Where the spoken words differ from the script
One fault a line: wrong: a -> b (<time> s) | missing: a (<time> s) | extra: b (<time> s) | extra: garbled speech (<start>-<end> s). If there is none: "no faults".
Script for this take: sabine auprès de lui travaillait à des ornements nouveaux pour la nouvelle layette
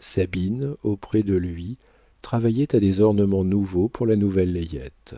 no faults